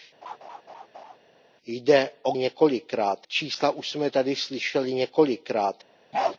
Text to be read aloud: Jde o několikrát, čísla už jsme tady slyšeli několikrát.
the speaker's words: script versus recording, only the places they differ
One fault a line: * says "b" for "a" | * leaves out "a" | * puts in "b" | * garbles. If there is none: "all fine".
all fine